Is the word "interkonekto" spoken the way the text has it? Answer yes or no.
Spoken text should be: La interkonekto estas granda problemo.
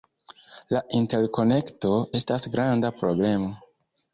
yes